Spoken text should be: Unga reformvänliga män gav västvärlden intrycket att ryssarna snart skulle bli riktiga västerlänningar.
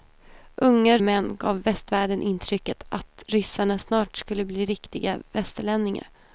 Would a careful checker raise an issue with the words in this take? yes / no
yes